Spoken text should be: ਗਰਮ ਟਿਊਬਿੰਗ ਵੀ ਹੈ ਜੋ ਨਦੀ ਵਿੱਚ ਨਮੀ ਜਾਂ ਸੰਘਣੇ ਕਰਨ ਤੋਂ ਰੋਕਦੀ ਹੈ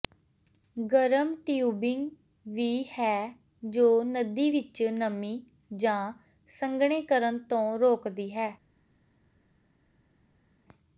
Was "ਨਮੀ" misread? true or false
false